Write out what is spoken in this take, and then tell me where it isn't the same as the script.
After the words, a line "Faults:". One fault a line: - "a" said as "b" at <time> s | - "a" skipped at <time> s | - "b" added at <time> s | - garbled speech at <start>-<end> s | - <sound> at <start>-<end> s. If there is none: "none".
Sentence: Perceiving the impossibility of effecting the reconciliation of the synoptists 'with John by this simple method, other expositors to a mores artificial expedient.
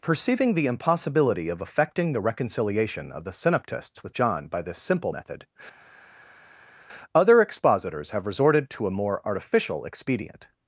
Perceiving the impossibility of effecting the reconciliation of the synoptists 'with John by this simple method, other expositors have resorted to a more artificial expedient.
Faults:
- "have resorted" added at 8.1 s
- "mores" said as "more" at 9.0 s